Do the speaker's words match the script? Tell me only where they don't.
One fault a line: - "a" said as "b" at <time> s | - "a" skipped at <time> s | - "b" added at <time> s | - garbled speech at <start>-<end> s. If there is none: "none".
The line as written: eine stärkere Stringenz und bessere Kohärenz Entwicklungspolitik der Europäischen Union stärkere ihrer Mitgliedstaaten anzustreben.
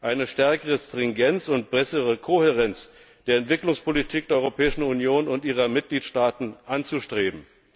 - "der" added at 3.3 s
- "stärkere" said as "und" at 5.3 s